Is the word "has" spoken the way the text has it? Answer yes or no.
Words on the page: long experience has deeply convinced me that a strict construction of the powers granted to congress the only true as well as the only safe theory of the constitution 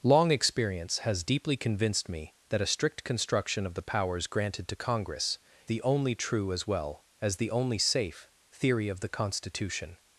yes